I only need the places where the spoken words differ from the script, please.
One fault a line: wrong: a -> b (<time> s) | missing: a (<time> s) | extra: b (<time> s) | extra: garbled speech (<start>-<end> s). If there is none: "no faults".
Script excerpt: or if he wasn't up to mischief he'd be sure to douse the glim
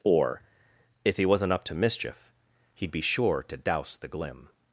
no faults